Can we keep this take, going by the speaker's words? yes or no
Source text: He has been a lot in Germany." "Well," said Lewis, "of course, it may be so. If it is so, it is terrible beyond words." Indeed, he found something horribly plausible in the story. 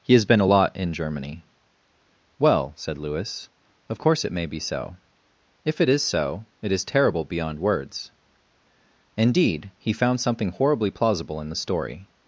yes